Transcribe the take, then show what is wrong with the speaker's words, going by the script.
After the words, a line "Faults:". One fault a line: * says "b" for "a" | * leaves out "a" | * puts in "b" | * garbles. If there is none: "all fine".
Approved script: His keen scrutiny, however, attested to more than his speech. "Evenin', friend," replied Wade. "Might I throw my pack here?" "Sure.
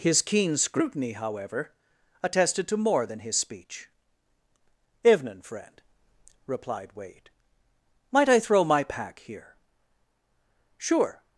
His keen scrutiny, however, attested to more than his speech. "Evenin', friend," replied Wade. "Might I throw my pack here?" "Sure.
Faults:
all fine